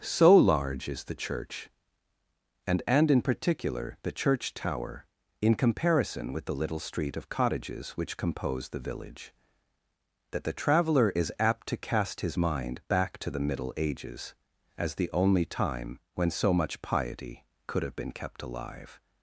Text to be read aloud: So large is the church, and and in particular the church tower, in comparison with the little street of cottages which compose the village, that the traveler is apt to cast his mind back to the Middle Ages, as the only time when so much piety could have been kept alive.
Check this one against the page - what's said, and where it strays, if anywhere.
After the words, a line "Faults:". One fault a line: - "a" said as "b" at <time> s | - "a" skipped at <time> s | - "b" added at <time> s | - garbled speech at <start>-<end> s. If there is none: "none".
So large is the church, and and in particular the church tower, in comparison with the little street of cottages which compose the village, that the traveler is apt to cast his mind back to the Middle Ages, as the only time when so much piety could have been kept alive.
Faults:
none